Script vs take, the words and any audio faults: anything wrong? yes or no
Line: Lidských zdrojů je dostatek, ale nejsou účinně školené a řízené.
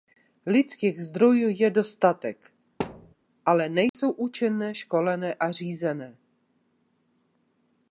yes